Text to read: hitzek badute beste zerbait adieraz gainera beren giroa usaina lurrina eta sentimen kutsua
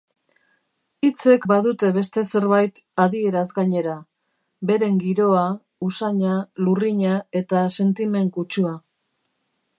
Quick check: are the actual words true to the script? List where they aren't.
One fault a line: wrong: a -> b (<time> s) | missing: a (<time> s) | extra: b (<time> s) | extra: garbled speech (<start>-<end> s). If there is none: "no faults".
no faults